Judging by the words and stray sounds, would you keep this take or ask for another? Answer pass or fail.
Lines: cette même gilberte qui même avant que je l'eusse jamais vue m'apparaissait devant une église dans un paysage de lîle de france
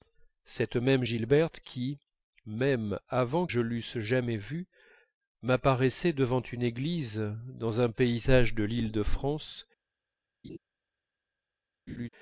fail